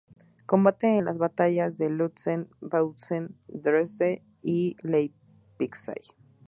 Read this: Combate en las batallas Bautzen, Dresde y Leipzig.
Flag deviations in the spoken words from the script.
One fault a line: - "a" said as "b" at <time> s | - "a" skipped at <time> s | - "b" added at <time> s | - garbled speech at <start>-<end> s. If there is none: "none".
- "de Lützen" added at 1.8 s